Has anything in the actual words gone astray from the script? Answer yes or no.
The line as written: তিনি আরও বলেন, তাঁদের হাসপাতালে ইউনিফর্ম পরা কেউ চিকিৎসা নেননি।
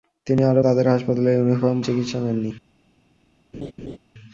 yes